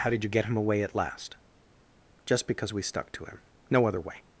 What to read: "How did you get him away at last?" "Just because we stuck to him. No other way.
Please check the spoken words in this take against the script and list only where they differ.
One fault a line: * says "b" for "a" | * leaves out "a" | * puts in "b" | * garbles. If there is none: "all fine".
all fine